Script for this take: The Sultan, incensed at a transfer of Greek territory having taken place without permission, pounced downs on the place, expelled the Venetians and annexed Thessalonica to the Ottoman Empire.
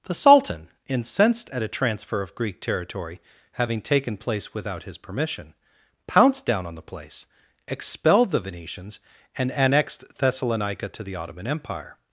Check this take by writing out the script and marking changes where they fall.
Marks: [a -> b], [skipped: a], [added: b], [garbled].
The Sultan, incensed at a transfer of Greek territory having taken place without [added: his] permission, pounced [downs -> down] on the place, expelled the Venetians and annexed Thessalonica to the Ottoman Empire.